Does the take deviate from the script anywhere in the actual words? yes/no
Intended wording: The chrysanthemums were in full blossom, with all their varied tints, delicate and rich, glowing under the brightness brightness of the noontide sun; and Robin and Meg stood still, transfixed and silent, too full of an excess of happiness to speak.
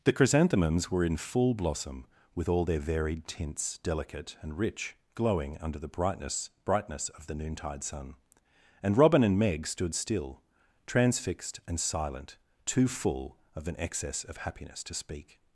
no